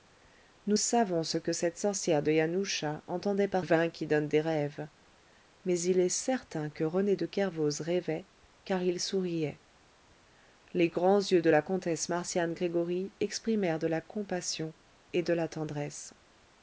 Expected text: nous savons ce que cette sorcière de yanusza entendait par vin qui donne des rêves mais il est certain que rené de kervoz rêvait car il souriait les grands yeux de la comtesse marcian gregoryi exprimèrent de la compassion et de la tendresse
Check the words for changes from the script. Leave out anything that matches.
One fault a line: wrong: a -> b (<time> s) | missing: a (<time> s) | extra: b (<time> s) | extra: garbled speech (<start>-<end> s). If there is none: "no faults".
no faults